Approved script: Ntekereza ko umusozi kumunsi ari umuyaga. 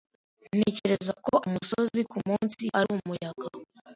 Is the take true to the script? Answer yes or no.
yes